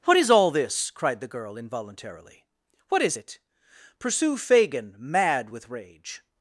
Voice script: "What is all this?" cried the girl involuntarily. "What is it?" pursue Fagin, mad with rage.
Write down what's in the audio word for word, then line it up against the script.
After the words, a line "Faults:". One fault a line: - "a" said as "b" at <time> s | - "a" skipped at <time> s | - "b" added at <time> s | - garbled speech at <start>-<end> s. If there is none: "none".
"What is all this?" cried the girl involuntarily. "What is it?" pursue Fagin, mad with rage.
Faults:
none